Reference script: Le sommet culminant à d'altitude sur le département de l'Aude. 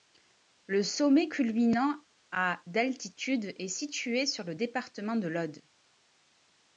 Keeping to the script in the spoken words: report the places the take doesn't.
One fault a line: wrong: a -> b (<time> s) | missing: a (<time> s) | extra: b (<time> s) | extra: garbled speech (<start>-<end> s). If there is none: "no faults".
extra: est situé (3.6 s)